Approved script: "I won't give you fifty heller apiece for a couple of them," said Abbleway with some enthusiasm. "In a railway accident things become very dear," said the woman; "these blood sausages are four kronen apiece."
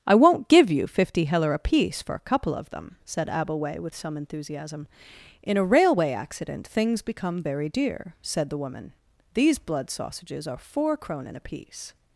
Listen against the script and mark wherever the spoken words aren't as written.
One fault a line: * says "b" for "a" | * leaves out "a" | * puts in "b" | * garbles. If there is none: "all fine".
all fine